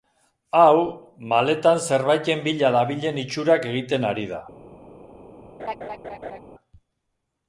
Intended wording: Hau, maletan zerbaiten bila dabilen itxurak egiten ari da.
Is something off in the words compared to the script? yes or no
no